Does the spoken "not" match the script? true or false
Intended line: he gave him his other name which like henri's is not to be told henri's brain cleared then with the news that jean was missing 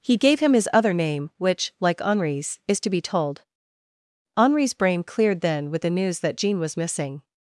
false